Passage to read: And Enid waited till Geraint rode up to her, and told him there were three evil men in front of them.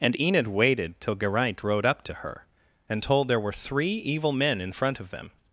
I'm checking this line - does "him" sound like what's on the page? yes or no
no